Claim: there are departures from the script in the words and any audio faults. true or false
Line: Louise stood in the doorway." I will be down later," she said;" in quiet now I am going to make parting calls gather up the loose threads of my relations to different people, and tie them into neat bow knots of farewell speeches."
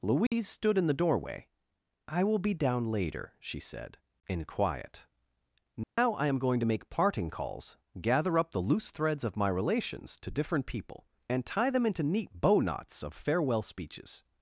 true